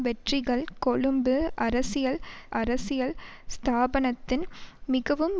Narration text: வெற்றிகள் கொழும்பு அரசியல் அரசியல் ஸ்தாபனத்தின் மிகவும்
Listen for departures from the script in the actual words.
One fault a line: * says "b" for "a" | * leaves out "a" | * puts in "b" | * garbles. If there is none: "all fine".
all fine